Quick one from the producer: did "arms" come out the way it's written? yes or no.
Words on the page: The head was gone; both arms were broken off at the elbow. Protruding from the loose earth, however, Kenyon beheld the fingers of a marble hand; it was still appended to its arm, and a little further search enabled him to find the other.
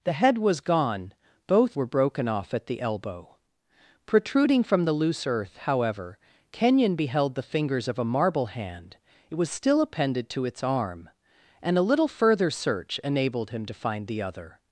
no